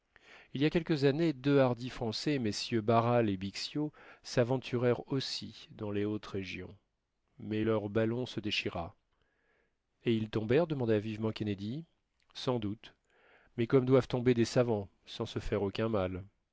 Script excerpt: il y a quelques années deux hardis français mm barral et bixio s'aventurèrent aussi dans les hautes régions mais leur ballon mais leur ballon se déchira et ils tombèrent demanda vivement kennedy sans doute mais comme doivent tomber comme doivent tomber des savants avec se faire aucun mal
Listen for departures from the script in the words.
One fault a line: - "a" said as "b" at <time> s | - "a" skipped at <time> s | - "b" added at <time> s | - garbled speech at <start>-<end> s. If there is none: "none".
- "mais leur ballon" skipped at 8.3 s
- "comme doivent tomber" skipped at 14.3 s
- "avec" said as "sans" at 15.1 s